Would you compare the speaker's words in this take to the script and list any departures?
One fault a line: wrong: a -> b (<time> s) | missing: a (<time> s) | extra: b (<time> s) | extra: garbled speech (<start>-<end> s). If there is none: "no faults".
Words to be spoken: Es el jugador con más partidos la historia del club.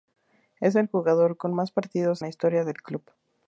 no faults